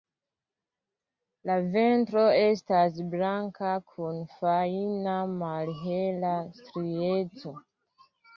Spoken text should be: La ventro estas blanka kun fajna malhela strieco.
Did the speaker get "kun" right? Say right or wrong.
right